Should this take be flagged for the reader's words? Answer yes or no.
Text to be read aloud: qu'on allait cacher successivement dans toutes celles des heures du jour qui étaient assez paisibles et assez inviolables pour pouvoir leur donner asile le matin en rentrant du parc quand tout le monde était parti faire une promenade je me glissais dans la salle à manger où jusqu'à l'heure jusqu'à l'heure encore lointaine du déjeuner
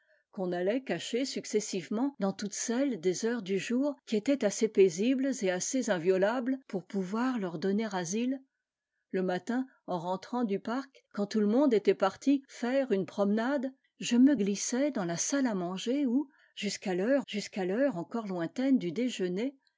no